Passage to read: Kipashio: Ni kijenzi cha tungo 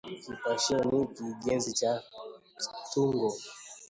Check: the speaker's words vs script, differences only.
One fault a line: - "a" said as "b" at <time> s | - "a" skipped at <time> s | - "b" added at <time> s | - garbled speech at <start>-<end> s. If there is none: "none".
none